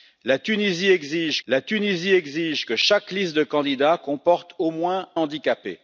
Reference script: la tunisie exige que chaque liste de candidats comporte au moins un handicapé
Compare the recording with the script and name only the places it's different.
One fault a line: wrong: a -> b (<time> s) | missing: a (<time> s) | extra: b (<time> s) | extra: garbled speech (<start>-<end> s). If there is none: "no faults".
extra: la tunisie exige (1.5 s)
missing: un (5.1 s)